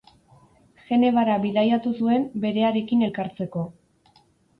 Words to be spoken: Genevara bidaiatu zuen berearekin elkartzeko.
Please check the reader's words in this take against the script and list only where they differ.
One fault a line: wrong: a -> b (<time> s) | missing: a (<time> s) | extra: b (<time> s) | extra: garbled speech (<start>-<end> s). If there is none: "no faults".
no faults